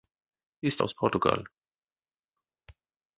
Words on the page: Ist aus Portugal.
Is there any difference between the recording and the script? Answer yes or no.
no